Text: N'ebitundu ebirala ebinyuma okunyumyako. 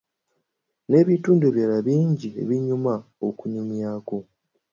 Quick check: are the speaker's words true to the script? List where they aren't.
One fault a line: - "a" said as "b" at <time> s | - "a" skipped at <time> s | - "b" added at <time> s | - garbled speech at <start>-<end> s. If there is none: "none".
- "bingi" added at 1.9 s